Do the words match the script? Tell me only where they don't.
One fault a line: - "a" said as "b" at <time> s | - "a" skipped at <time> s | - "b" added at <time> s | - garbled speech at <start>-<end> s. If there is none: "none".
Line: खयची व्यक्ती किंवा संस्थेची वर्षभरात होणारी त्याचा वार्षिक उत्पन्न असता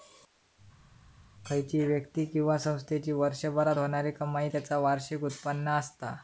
- "कमाई" added at 4.1 s